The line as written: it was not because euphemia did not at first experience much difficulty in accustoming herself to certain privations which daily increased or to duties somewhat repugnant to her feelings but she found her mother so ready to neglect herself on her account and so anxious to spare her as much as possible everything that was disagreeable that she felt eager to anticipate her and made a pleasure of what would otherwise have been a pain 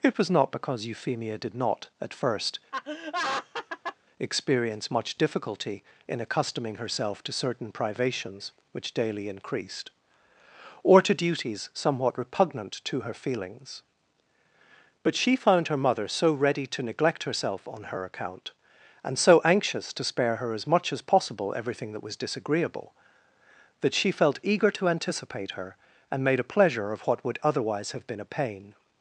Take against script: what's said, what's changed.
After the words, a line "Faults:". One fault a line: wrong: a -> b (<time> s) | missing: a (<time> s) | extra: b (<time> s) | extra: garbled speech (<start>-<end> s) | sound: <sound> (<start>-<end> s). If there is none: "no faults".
it was not because euphemia did not at first experience much difficulty in accustoming herself to certain privations which daily increased or to duties somewhat repugnant to her feelings but she found her mother so ready to neglect herself on her account and so anxious to spare her as much as possible everything that was disagreeable that she felt eager to anticipate her and made a pleasure of what would otherwise have been a pain
Faults:
sound: laugh (2.7-4.0 s)